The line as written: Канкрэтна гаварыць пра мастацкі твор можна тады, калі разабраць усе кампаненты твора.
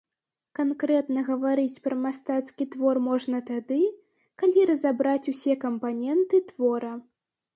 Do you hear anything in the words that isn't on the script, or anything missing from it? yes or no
no